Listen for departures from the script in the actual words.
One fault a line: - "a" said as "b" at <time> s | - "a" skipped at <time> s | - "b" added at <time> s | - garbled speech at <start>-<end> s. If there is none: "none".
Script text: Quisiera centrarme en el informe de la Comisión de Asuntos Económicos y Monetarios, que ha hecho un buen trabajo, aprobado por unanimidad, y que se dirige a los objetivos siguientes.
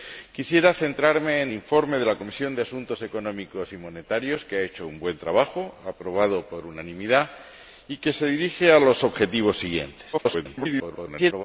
- "el" skipped at 1.5 s
- garbled speech at 10.1-11.4 s